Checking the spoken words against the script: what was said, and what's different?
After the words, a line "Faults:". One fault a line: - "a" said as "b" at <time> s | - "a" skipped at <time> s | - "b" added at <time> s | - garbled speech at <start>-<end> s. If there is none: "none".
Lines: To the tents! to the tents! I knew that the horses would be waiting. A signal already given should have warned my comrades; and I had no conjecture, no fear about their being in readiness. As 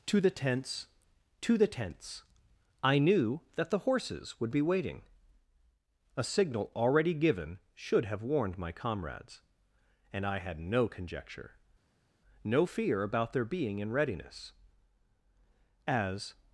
To the tents! to the tents! I knew that the horses would be waiting. A signal already given should have warned my comrades; and I had no conjecture, no fear about their being in readiness. As
Faults:
none